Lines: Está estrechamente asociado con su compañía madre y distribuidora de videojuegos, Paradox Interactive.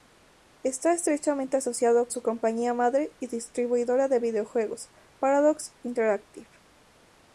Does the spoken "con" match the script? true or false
false